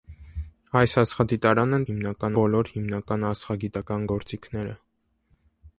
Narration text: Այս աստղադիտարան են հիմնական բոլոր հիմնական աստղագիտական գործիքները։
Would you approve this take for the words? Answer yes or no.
yes